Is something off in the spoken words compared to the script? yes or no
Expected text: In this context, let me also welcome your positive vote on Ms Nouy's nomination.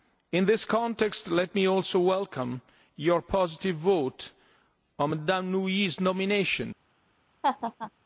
no